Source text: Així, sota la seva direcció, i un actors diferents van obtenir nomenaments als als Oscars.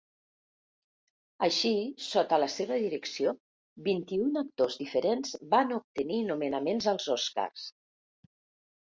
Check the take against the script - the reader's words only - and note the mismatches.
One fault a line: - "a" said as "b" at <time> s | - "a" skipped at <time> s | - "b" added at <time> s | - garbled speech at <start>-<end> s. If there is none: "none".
- "vint" added at 3.9 s
- "als" skipped at 7.1 s